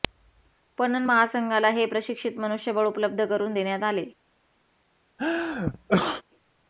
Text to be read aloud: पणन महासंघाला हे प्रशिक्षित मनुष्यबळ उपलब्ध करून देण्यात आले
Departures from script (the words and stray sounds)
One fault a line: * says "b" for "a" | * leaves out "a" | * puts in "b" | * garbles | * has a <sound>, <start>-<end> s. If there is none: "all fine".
* has a sneeze, 5.2-6.2 s